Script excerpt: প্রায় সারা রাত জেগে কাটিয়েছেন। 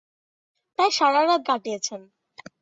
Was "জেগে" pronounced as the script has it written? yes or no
no